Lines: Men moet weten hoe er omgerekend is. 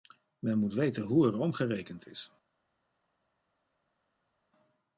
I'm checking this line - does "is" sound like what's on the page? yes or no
yes